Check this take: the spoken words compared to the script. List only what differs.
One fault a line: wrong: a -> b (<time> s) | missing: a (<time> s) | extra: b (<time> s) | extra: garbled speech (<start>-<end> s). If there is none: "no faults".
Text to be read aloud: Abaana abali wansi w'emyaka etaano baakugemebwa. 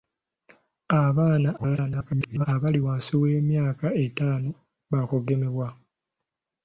extra: garbled speech (1.6-2.5 s)